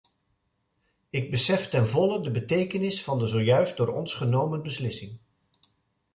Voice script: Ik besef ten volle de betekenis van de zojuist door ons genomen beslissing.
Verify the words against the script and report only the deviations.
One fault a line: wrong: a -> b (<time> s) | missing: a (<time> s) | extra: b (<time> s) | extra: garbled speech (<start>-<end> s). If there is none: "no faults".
no faults